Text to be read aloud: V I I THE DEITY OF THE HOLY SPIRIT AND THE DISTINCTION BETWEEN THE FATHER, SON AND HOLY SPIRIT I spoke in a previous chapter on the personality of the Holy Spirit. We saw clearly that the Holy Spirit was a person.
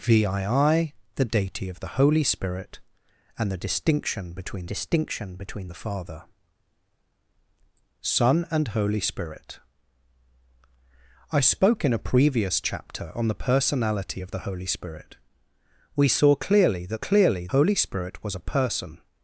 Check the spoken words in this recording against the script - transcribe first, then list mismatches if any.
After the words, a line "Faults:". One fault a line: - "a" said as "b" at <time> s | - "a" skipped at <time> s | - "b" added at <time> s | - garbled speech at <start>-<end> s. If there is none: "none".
V I I THE DEITY OF THE HOLY SPIRIT AND THE DISTINCTION BETWEEN DISTINCTION BETWEEN THE FATHER, SON AND HOLY SPIRIT I spoke in a previous chapter on the personality of the Holy Spirit. We saw clearly that clearly Holy Spirit was a person.
Faults:
- "DISTINCTION BETWEEN" added at 4.6 s
- "the" said as "clearly" at 17.0 s